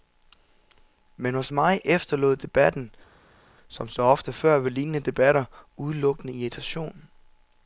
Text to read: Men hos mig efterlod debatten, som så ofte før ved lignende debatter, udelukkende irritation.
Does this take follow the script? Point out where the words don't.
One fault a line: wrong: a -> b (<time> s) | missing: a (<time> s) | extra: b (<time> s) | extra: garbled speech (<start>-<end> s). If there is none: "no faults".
no faults